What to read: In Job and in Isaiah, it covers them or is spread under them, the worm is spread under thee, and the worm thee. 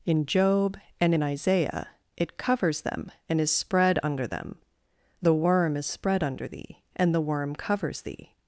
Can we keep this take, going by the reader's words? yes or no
no